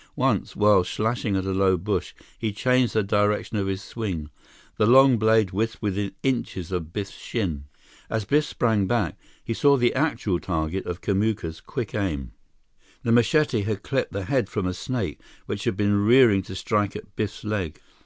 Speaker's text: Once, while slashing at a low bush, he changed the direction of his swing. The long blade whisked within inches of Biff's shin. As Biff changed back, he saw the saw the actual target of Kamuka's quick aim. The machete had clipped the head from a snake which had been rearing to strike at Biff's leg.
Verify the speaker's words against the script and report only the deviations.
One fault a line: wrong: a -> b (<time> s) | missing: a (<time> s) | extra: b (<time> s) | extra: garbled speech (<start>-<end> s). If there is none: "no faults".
wrong: changed -> sprang (8.5 s)
missing: saw the (9.9 s)